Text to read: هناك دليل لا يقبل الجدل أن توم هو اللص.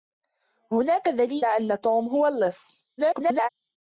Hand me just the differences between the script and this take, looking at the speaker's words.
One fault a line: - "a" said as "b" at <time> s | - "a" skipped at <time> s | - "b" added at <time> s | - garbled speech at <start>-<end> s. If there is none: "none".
- "لا يقبل الجدل" skipped at 1.5 s
- garbled speech at 3.0-3.5 s